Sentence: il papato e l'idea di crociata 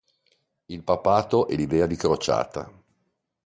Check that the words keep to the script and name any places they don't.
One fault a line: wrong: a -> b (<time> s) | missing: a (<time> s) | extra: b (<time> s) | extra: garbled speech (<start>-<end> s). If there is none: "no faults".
no faults